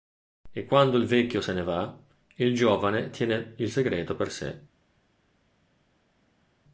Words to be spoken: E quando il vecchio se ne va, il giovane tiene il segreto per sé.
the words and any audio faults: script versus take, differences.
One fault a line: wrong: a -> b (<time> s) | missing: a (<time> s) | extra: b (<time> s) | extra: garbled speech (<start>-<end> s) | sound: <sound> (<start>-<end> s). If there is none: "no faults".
no faults